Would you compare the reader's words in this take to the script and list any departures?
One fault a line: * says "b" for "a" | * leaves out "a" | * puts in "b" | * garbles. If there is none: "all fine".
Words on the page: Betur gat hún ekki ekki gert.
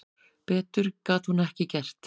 * leaves out "ekki"